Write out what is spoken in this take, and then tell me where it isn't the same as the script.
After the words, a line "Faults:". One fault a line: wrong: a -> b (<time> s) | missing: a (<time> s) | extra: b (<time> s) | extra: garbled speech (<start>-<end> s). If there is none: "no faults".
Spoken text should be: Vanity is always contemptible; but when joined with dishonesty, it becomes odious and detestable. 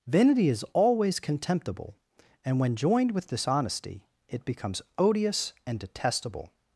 Vanity is always contemptible; and when joined with dishonesty, it becomes odious and detestable.
Faults:
wrong: but -> and (2.4 s)